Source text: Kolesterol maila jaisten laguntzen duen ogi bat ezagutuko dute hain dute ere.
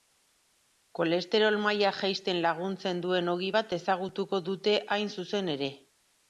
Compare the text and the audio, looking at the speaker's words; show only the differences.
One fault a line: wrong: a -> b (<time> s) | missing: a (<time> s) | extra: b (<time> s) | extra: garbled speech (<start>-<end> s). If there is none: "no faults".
wrong: dute -> zuzen (5.2 s)